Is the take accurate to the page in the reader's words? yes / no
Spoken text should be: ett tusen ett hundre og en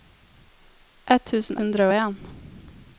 no